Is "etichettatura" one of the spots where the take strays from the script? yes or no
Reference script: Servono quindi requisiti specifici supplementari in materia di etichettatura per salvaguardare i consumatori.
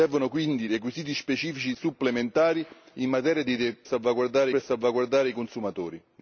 yes